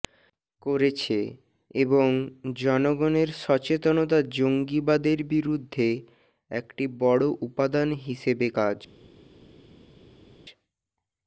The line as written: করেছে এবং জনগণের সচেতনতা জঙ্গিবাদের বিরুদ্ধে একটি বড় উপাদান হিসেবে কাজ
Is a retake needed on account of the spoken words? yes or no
no